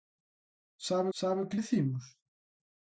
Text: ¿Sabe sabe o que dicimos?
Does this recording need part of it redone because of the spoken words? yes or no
no